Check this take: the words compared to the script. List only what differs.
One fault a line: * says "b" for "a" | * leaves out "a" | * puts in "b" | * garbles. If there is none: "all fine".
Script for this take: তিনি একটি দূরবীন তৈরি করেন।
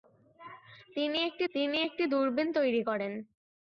* puts in "তিনি একটি"